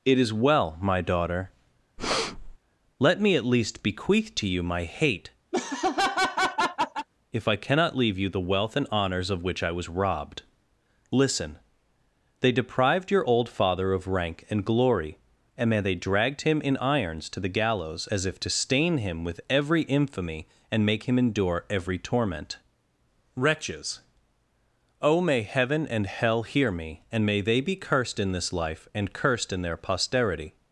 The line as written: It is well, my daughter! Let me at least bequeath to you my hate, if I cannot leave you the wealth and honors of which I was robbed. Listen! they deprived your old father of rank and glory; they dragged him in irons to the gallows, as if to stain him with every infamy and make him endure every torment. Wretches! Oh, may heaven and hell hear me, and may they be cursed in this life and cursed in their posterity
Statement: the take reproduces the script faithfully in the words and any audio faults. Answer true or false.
false